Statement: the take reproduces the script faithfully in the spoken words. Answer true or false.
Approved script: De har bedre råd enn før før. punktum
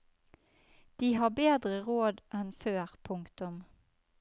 false